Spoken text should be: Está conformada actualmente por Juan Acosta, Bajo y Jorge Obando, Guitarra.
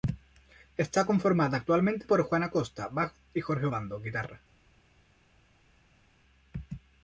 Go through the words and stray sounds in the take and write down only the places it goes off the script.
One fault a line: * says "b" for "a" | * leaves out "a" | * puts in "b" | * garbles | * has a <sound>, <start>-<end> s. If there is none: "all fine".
all fine